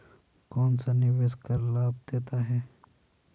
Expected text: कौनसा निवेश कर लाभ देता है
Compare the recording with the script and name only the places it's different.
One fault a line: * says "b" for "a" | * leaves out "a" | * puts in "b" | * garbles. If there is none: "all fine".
all fine